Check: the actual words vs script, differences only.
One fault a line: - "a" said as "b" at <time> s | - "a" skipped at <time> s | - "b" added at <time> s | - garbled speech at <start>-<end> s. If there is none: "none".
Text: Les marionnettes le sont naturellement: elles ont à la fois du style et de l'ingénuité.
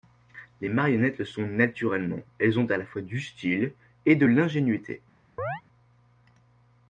none